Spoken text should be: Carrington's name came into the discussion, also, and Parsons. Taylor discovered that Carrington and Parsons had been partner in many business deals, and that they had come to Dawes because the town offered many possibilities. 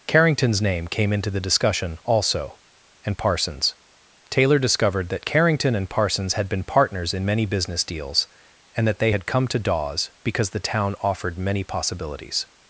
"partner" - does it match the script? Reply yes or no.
no